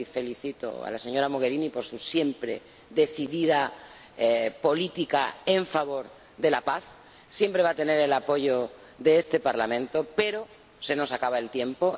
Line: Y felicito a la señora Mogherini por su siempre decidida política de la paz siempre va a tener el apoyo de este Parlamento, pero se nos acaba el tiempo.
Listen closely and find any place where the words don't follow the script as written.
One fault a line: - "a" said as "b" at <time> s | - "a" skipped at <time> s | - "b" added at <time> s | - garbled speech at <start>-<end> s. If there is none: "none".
- "en favor" added at 5.5 s